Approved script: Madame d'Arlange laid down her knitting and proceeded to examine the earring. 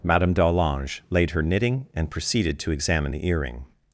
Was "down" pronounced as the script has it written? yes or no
no